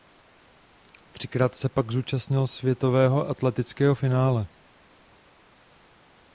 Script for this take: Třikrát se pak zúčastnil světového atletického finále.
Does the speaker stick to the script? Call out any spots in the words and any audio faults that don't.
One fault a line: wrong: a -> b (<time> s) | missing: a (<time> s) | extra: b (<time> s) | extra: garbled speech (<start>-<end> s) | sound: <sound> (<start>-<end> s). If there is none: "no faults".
no faults